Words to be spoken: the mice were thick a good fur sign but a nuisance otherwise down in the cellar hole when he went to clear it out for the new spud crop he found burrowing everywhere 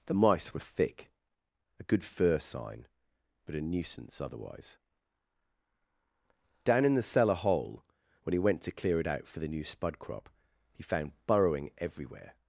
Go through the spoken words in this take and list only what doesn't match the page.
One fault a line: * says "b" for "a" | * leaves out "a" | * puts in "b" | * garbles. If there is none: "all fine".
all fine